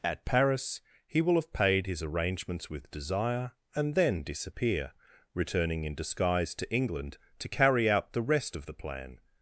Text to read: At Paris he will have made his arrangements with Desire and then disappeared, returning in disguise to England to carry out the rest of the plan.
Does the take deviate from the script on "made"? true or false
true